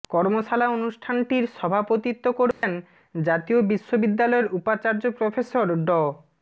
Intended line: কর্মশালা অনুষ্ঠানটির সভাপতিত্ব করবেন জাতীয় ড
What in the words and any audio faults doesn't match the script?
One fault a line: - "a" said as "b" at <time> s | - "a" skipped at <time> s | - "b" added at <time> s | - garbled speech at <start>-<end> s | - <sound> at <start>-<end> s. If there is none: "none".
- dropout at 2.5-2.6 s
- "বিশ্ববিদ্যালয়ের উপাচার্য প্রফেসর" added at 3.7 s